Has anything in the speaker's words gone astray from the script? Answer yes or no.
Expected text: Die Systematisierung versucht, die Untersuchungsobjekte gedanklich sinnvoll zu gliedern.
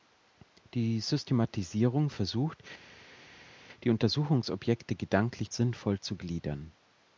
no